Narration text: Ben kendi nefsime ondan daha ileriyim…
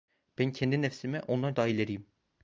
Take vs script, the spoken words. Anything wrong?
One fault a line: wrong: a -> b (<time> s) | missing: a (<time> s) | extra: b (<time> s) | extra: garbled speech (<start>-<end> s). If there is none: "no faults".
no faults